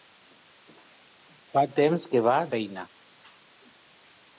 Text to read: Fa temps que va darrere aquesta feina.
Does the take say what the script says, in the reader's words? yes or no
no